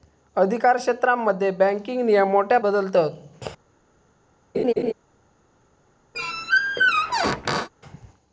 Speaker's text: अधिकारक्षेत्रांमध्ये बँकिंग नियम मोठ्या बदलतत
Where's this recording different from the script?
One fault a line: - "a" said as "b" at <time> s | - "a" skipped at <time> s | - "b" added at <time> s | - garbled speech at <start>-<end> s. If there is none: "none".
none